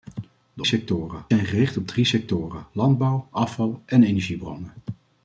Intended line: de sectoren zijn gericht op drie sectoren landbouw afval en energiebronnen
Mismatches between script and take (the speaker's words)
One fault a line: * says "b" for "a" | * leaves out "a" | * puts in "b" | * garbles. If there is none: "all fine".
all fine